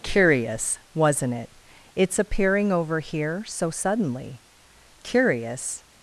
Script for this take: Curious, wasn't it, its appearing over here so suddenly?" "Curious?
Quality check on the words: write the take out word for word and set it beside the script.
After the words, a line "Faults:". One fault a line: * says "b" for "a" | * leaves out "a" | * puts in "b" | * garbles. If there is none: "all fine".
Curious, wasn't it, its appearing over here so suddenly?" "Curious?
Faults:
all fine